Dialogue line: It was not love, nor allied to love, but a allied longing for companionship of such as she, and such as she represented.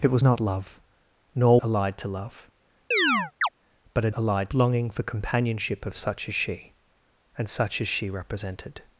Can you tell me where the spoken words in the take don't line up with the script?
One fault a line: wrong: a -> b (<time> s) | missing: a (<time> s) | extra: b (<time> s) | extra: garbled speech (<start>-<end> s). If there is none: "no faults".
no faults